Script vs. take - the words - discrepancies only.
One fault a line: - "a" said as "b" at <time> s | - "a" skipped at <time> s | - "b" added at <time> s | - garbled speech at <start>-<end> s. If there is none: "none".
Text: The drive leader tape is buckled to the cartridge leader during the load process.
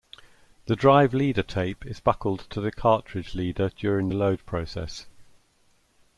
none